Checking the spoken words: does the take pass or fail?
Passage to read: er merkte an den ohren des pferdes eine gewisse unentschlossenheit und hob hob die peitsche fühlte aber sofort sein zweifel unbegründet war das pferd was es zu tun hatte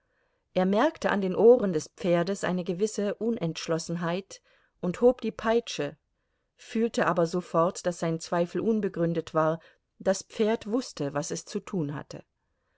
fail